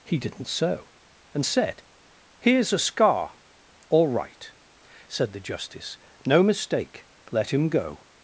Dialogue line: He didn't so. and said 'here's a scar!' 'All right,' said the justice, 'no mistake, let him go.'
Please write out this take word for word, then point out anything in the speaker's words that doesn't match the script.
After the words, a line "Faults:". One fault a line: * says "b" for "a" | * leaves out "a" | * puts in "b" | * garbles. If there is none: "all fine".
He didn't so. and said 'here's a scar!' 'All right,' said the justice, 'no mistake, let him go.'
Faults:
all fine